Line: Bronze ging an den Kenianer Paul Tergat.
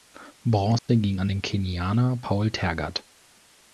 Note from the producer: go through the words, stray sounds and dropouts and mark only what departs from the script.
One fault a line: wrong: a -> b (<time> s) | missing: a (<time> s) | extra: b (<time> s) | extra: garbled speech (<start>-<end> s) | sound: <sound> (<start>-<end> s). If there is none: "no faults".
sound: dropout (0.8-0.9 s)